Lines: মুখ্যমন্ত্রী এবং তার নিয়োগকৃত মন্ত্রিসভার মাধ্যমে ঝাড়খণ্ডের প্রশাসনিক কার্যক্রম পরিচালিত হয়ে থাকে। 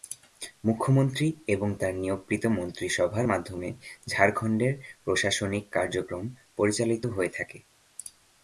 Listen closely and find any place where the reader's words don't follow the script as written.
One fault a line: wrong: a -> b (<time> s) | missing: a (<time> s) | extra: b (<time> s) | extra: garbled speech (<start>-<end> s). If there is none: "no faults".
no faults